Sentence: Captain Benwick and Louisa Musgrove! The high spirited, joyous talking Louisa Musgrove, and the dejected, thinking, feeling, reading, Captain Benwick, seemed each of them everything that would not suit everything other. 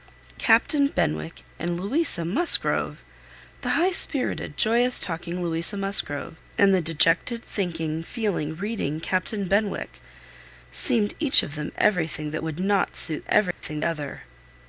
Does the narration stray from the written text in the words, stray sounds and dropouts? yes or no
yes